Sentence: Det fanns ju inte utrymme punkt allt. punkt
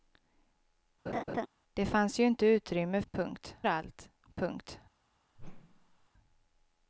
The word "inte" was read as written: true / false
true